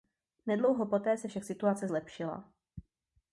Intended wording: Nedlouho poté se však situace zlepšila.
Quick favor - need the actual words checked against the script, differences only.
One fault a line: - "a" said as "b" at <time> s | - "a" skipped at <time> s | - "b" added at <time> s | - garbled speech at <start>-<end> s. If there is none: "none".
none